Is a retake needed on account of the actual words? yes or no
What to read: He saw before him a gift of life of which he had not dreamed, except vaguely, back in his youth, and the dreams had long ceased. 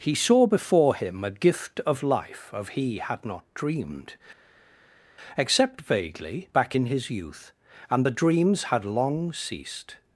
yes